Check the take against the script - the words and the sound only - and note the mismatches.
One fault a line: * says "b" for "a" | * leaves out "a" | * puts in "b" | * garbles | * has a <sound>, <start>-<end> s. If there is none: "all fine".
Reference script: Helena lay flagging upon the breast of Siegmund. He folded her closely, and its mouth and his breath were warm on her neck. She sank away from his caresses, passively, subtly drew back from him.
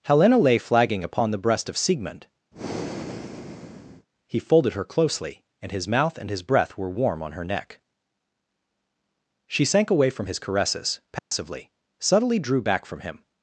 * has a breath, 2.5-4.1 s
* says "his" for "its"
* has a dropout, 11.2-11.3 s